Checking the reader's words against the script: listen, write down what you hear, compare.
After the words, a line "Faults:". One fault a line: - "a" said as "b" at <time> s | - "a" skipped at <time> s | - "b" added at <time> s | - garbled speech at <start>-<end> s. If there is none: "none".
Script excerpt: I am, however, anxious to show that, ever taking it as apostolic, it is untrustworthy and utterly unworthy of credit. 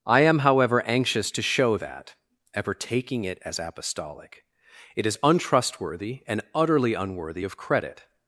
I am, however, anxious to show that, ever taking it as apostolic, it is untrustworthy and utterly unworthy of credit.
Faults:
none